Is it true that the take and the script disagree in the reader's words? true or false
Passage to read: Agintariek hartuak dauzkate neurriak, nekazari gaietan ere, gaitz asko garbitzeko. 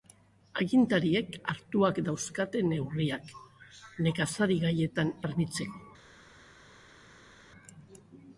true